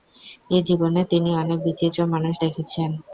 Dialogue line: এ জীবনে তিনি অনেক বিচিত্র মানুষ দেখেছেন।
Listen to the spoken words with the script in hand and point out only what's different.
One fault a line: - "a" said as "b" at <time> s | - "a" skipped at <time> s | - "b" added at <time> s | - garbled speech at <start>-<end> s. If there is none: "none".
none